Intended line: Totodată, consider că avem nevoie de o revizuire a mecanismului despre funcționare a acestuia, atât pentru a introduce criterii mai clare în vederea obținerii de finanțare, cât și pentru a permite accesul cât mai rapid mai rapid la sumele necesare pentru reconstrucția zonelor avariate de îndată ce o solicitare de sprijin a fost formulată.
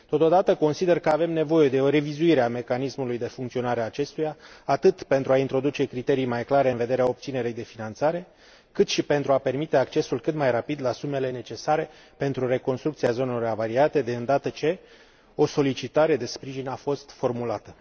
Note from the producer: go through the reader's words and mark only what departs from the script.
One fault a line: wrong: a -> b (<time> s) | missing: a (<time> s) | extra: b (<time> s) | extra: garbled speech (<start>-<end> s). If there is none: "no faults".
wrong: despre -> de (3.2 s)
missing: mai rapid (10.8 s)